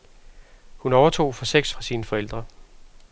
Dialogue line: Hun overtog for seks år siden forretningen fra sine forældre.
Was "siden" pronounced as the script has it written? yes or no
no